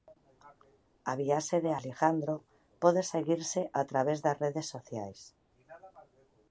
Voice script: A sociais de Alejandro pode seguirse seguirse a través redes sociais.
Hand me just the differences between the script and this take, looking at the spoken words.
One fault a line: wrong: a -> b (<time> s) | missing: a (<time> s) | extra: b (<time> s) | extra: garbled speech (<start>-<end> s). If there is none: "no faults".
wrong: sociais -> viaxe (1.2 s)
missing: seguirse (3.6 s)
extra: das (4.2 s)